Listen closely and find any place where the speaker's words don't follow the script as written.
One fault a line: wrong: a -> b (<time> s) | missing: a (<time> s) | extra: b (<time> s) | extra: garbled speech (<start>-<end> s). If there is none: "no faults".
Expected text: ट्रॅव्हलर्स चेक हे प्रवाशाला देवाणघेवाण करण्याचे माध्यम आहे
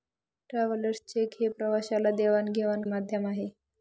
missing: करण्याचे (2.8 s)